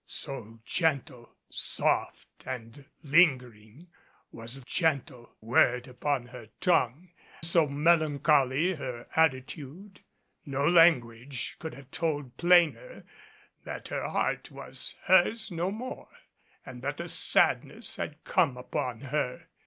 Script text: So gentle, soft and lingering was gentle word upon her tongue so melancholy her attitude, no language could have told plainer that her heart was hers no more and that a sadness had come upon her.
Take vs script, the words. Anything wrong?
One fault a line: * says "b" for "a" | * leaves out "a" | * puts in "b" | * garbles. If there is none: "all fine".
all fine